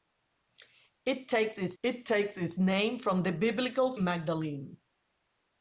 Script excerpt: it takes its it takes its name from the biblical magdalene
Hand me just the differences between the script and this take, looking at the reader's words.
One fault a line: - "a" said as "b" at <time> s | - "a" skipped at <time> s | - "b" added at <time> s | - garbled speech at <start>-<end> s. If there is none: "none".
none